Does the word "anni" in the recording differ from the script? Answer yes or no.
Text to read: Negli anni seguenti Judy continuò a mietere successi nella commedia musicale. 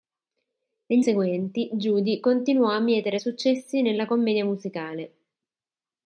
yes